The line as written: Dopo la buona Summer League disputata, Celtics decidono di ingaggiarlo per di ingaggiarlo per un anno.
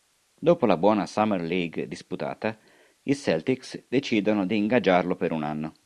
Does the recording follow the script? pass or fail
fail